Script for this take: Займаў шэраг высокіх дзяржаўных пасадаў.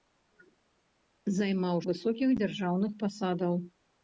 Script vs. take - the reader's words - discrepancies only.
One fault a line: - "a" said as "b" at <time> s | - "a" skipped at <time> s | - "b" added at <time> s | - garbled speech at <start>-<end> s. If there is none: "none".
- "шэраг" skipped at 1.8 s